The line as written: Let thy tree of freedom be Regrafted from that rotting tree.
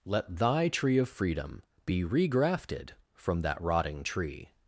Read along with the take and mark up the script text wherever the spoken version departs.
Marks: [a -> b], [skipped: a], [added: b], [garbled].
Let thy tree of freedom be Regrafted from that rotting tree.